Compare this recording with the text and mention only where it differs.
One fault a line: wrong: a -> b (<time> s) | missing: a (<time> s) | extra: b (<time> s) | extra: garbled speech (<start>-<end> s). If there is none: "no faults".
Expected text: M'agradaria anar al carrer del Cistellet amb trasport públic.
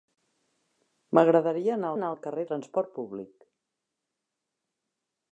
extra: anar (1.9 s)
missing: del Cistellet amb (2.5 s)